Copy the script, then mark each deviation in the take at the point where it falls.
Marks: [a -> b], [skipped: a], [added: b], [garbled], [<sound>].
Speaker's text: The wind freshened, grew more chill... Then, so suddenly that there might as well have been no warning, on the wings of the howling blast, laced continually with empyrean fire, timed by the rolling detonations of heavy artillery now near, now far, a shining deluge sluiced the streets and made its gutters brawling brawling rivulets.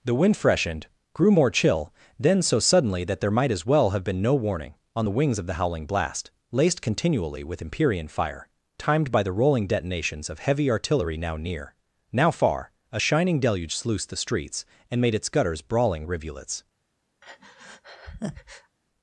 The wind freshened, grew more chill... Then, so suddenly that there might as well have been no warning, on the wings of the howling blast, laced continually with empyrean fire, timed by the rolling detonations of heavy artillery now near, now far, a shining deluge sluiced the streets and made its gutters brawling [skipped: brawling] rivulets. [breath]